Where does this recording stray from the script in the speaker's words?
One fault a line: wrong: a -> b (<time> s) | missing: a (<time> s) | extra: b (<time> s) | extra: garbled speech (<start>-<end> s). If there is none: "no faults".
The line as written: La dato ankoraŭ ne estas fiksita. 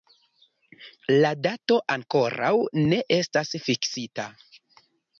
no faults